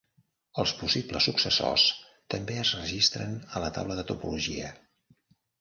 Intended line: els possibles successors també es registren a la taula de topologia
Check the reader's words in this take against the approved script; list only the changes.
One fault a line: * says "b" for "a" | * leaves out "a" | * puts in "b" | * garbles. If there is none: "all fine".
all fine